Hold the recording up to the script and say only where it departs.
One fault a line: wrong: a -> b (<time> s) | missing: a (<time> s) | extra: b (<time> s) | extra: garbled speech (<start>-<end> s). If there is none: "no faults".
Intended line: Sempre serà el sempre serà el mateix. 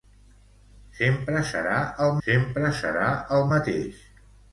no faults